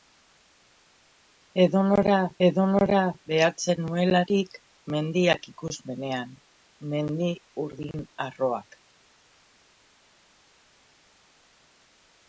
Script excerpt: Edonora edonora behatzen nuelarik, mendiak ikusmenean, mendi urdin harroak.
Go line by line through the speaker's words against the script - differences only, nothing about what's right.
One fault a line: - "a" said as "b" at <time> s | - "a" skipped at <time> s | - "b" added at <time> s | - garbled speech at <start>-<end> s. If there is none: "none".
none